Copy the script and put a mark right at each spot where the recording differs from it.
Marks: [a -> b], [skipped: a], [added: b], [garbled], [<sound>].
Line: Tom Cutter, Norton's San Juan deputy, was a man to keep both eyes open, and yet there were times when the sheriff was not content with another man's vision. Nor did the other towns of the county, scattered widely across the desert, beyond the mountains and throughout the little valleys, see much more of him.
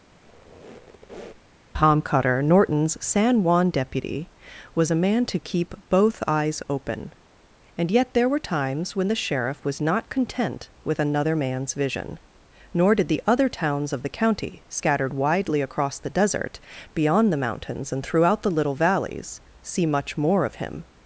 [squeak] Tom Cutter, Norton's San Juan deputy, was a man to keep both eyes open, and yet there were times when the sheriff was not content with another man's vision. Nor did the other towns of the county, scattered widely across the desert, beyond the mountains and throughout the little valleys, see much more of him.